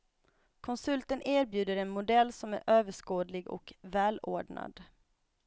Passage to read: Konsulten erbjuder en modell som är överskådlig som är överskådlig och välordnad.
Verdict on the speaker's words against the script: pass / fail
fail